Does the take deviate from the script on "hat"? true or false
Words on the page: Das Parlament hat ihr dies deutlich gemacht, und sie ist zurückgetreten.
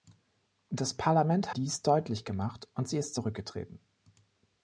true